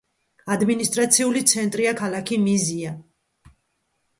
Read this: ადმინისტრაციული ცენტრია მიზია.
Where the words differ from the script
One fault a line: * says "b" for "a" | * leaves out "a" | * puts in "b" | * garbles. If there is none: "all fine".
* puts in "ქალაქი"